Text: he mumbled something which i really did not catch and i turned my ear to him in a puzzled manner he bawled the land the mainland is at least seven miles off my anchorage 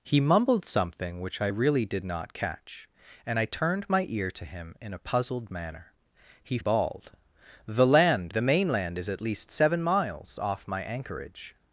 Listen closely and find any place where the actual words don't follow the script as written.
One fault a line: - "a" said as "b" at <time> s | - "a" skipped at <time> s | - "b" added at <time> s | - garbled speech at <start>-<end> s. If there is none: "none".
none